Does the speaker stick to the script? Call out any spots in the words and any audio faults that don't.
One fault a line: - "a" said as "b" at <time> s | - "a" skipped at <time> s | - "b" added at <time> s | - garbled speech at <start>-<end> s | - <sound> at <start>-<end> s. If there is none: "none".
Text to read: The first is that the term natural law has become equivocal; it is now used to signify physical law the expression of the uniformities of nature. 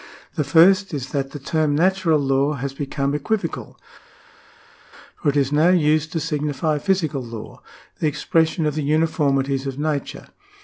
- "for" added at 5.1 s